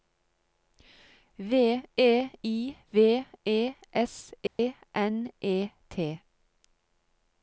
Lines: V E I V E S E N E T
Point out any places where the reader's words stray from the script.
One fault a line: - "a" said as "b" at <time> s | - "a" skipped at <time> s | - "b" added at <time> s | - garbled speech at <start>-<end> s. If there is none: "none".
none